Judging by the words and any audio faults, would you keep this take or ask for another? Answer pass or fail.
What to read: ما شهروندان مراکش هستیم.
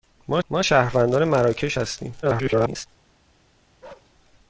fail